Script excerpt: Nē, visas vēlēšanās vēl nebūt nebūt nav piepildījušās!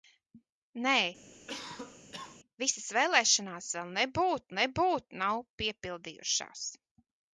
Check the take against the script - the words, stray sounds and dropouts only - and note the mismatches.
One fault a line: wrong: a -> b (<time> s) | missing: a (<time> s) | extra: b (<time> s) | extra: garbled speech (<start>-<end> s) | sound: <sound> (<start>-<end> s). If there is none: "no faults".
sound: cough (1.3-2.4 s)